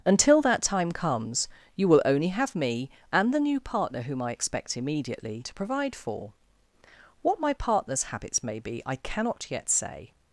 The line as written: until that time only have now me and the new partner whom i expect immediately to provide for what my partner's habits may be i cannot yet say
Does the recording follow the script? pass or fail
fail